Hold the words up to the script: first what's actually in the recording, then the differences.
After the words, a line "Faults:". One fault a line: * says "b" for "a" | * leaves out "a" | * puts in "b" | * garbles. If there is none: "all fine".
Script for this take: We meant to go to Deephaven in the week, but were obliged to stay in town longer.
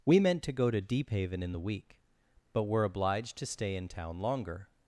We meant to go to Deephaven in the week, but were obliged to stay in town longer.
Faults:
all fine